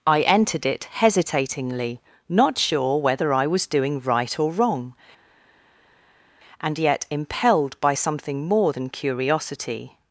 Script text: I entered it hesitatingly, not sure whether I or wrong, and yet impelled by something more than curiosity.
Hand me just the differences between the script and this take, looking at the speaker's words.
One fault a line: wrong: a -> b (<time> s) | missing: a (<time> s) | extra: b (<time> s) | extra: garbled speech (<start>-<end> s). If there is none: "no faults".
extra: was doing right (3.5 s)